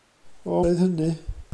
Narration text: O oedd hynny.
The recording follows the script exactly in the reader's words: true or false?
true